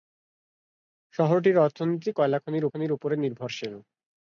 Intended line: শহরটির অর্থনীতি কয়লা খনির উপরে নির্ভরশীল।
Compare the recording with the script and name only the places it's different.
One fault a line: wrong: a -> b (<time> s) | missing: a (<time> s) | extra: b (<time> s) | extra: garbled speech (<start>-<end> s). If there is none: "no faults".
extra: খনির (2.7 s)